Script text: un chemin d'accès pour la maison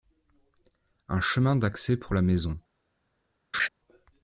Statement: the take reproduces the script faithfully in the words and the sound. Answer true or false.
false